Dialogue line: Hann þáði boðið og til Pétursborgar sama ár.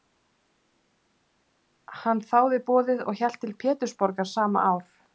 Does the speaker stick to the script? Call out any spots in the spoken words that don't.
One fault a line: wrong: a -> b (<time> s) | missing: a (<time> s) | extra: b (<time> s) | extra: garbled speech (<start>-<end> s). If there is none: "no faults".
extra: hélt (3.2 s)